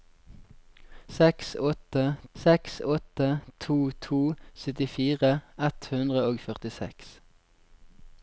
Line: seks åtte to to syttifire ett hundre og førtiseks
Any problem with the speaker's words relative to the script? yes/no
yes